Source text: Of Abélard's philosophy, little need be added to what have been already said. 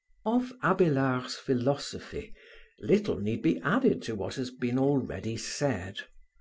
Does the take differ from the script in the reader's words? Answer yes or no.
yes